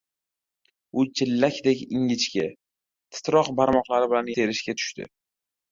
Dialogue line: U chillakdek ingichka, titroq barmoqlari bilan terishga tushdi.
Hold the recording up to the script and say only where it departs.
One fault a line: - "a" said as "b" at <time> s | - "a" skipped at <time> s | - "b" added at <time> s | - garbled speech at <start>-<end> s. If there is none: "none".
none